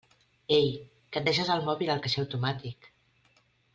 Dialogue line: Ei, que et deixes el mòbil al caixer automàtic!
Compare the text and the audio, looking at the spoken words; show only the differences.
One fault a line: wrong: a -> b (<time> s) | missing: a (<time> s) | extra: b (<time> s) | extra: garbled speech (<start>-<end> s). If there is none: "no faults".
no faults